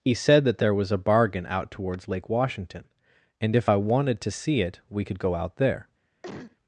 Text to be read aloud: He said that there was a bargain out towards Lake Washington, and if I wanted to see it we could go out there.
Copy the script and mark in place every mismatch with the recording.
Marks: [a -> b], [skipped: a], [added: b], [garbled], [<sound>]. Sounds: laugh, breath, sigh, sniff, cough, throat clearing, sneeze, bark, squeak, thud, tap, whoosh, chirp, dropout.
He said that there was a bargain out towards Lake Washington, and if I wanted to see it we could go out there. [cough]